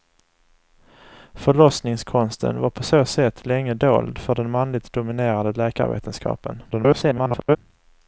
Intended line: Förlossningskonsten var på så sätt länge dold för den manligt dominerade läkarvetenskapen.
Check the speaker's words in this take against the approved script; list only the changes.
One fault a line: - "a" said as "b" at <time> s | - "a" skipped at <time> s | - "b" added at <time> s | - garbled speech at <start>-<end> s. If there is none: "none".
- garbled speech at 6.7-7.6 s